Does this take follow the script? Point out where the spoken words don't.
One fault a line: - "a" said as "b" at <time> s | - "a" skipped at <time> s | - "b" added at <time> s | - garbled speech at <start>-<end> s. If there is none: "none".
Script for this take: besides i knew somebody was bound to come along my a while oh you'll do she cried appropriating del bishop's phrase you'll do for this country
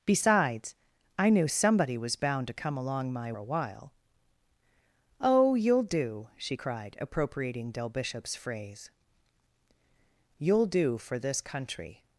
none